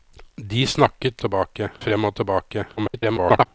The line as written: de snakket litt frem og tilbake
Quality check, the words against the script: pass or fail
fail